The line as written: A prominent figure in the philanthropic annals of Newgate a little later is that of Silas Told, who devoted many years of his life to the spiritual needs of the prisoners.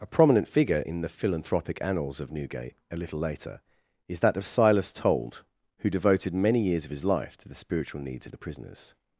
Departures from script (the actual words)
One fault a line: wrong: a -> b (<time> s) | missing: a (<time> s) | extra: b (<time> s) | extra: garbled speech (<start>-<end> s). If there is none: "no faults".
no faults